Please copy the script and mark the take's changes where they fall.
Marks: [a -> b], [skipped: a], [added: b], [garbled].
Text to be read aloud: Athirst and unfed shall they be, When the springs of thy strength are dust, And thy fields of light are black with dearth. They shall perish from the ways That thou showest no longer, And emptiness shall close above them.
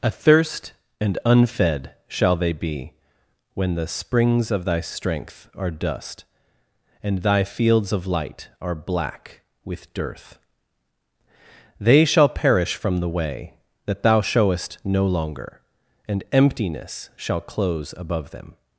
Athirst and unfed shall they be, When the springs of thy strength are dust, And thy fields of light are black with dearth. They shall perish from the [ways -> way] That thou showest no longer, And emptiness shall close above them.